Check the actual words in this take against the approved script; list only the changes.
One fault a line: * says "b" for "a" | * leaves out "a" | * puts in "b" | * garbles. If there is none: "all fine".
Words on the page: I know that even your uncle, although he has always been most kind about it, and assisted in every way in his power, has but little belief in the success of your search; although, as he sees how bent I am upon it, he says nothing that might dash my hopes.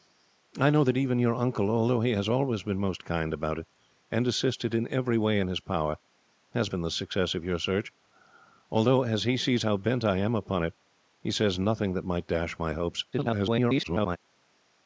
* leaves out "but little belief"
* garbles